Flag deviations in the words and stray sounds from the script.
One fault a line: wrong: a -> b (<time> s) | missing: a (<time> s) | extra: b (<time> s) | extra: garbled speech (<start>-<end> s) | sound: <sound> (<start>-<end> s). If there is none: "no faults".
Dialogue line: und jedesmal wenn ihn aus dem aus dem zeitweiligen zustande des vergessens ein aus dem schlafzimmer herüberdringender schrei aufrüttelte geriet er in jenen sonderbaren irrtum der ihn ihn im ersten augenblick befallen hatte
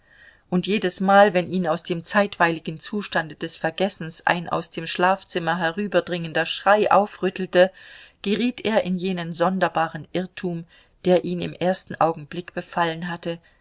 missing: aus dem (2.0 s)
missing: ihn (11.4 s)